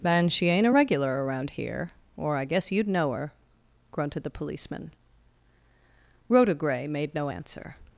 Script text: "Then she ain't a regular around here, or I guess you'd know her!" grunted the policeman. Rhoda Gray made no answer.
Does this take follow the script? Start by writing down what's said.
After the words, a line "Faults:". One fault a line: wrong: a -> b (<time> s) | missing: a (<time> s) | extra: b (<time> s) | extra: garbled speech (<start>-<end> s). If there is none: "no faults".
"Then she ain't a regular around here, or I guess you'd know her!" grunted the policeman. Rhoda Gray made no answer.
Faults:
no faults